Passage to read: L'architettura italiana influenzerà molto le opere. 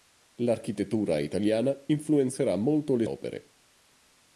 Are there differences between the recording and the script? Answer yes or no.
no